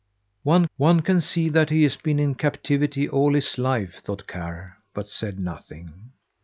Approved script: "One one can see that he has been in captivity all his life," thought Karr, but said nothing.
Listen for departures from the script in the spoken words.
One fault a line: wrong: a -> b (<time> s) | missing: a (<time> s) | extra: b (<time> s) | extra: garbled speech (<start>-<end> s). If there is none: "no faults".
no faults